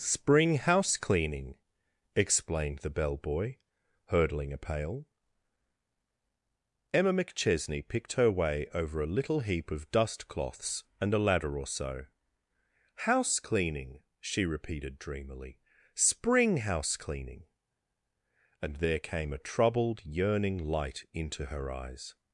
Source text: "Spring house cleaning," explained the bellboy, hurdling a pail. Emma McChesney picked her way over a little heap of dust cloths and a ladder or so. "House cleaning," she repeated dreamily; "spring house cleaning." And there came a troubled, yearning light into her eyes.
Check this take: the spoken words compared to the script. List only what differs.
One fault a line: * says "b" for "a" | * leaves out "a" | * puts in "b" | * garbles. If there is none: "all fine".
all fine